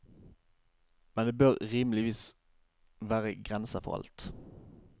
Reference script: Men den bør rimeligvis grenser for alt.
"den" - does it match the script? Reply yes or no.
no